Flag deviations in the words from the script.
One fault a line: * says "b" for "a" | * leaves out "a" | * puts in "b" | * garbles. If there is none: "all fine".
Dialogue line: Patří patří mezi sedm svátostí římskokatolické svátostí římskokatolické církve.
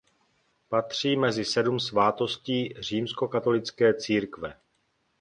* leaves out "patří"
* leaves out "svátostí římskokatolické"